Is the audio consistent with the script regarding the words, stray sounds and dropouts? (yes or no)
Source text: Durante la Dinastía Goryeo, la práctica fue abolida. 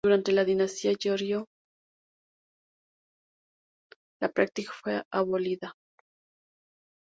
yes